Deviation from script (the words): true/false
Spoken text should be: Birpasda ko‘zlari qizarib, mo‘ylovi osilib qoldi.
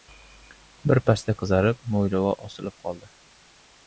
true